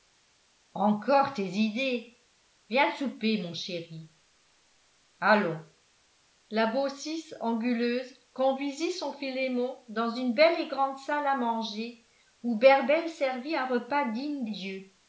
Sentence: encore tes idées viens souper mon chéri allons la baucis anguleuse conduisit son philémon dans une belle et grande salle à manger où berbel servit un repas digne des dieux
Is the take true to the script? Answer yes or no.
no